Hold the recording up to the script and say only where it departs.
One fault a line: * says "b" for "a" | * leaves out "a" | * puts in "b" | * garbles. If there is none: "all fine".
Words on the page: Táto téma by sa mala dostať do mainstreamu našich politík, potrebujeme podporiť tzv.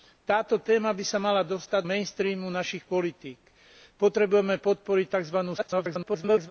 * leaves out "do"
* garbles